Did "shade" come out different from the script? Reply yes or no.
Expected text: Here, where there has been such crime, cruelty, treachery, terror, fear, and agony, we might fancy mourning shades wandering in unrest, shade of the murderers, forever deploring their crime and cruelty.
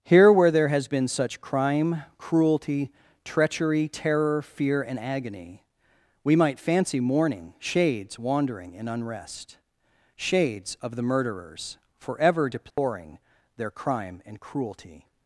yes